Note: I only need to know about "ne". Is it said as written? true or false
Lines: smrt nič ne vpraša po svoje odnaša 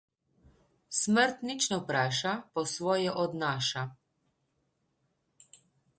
true